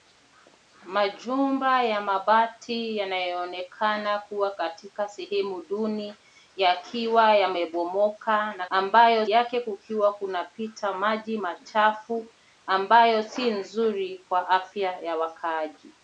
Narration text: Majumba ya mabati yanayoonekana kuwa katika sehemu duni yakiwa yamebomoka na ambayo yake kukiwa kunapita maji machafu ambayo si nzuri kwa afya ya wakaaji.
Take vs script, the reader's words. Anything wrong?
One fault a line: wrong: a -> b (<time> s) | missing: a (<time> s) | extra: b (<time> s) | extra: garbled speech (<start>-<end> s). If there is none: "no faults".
no faults